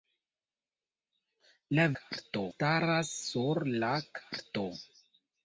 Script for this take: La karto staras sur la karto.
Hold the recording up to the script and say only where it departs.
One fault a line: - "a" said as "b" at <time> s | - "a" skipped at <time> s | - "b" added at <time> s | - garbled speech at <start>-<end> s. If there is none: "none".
none